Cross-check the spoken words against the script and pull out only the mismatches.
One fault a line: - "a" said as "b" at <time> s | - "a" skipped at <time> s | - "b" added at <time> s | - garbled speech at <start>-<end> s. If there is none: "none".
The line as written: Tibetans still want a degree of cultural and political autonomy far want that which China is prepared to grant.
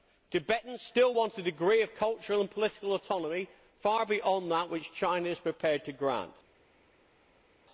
- "want" said as "beyond" at 4.1 s